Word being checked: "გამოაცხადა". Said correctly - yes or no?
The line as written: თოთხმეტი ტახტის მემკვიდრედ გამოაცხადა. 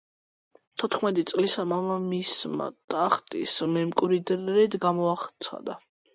yes